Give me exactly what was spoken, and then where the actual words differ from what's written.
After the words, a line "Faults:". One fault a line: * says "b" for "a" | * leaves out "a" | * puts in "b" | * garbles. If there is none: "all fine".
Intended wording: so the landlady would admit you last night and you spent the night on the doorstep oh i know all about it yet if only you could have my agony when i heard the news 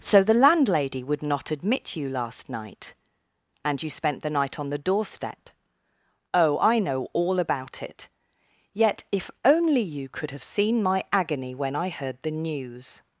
so the landlady would not admit you last night and you spent the night on the doorstep oh i know all about it yet if only you could have seen my agony when i heard the news
Faults:
* puts in "not"
* puts in "seen"